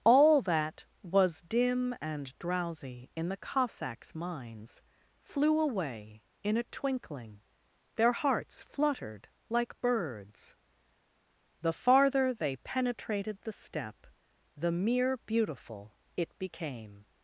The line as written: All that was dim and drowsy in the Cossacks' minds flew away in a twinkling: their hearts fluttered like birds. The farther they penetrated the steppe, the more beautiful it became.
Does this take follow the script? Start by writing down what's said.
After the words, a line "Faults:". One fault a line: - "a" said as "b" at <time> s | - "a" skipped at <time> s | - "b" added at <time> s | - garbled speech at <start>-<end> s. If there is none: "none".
All that was dim and drowsy in the Cossacks' minds flew away in a twinkling: their hearts fluttered like birds. The farther they penetrated the steppe, the mere beautiful it became.
Faults:
- "more" said as "mere" at 14.7 s